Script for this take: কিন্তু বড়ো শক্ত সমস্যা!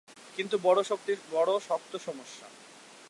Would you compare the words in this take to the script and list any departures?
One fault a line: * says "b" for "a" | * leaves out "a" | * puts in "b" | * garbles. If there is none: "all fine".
all fine